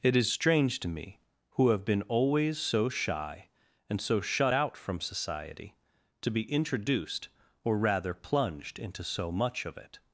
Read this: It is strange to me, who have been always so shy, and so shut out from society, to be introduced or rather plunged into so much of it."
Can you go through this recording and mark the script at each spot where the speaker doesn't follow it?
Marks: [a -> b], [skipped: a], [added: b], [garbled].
It is strange to me, who have been always so shy, and so shut out from society, to be introduced or rather plunged into so much of it."